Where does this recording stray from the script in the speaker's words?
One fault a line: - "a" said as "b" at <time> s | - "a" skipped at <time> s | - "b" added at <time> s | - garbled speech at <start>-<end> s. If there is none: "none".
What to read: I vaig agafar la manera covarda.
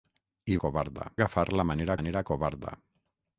- "vaig" said as "covarda" at 0.6 s
- "manera" added at 2.0 s